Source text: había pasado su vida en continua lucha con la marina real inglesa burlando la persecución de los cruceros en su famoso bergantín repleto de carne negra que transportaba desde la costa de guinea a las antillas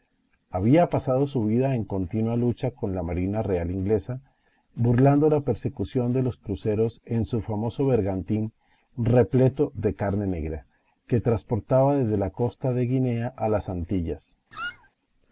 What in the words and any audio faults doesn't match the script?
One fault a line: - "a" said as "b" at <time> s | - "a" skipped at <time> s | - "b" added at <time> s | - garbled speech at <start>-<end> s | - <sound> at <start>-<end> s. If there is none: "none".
- squeak at 14.5-14.9 s